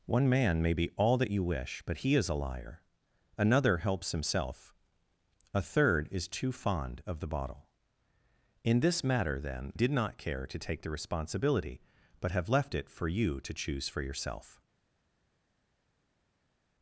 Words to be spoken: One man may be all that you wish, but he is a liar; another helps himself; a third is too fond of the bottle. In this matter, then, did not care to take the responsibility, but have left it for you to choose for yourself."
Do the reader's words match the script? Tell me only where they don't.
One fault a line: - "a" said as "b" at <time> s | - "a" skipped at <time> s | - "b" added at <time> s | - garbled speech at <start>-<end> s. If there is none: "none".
none